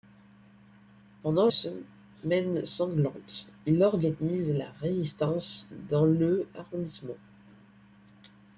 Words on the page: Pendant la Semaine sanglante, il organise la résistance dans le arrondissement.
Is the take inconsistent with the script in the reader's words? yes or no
yes